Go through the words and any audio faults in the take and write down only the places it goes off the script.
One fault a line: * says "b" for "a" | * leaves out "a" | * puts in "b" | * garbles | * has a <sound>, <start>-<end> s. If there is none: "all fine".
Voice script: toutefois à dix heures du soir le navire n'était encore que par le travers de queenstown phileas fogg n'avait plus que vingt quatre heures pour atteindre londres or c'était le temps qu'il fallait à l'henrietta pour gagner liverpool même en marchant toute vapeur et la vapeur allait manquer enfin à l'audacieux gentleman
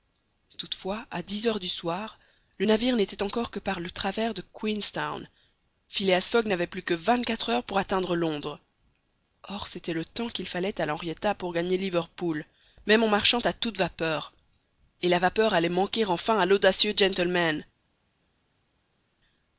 * puts in "à"